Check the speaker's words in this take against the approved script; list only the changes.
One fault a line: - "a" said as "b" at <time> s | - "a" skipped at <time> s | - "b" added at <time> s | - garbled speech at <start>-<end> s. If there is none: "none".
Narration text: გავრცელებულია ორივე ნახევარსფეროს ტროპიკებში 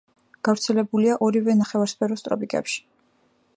none